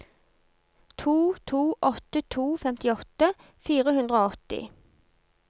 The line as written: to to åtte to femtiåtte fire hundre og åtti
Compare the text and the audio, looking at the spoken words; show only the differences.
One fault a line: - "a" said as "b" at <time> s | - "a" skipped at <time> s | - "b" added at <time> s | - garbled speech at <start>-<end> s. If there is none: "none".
none